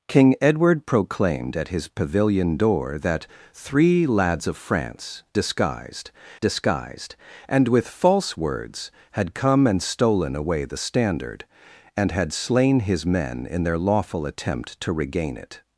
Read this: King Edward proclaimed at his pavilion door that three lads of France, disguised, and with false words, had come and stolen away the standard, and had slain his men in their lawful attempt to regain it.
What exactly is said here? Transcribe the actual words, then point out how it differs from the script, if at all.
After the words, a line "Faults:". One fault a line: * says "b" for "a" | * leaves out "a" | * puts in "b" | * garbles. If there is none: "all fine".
King Edward proclaimed at his pavilion door that three lads of France, disguised disguised, and with false words, had come and stolen away the standard, and had slain his men in their lawful attempt to regain it.
Faults:
* puts in "disguised"